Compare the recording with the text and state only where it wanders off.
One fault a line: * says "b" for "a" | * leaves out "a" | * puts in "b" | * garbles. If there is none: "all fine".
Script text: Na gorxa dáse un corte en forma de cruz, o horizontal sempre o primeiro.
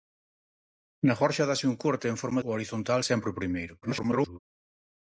* leaves out "de cruz"
* garbles